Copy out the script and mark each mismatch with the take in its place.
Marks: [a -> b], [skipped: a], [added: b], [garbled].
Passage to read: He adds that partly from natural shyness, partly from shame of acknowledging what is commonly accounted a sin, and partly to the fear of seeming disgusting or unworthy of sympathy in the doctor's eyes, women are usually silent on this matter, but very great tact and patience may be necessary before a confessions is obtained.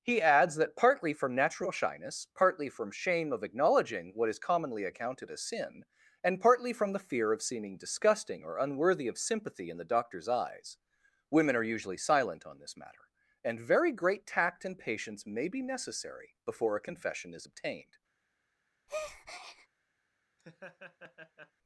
He adds that partly from natural shyness, partly from shame of acknowledging what is commonly accounted a sin, and partly [to -> from] the fear of seeming disgusting or unworthy of sympathy in the doctor's eyes, women are usually silent on this matter, [but -> and] very great tact and patience may be necessary before a [confessions -> confession] is obtained.